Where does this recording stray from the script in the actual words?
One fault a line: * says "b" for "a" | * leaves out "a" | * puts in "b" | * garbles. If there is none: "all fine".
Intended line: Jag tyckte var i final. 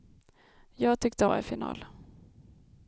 all fine